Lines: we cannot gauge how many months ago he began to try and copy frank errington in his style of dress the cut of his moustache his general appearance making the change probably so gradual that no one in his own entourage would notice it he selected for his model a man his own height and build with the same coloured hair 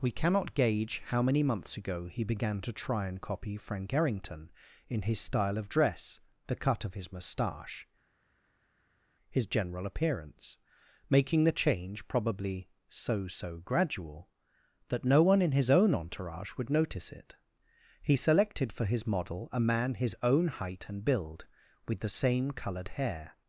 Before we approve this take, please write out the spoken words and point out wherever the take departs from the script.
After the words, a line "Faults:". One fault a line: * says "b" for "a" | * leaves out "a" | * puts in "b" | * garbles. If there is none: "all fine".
we cannot gauge how many months ago he began to try and copy frank errington in his style of dress the cut of his moustache his general appearance making the change probably so so gradual that no one in his own entourage would notice it he selected for his model a man his own height and build with the same coloured hair
Faults:
* puts in "so"